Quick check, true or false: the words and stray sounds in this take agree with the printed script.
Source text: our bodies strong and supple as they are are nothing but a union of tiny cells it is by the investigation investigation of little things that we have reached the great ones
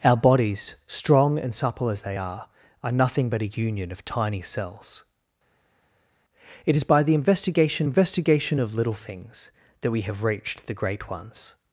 true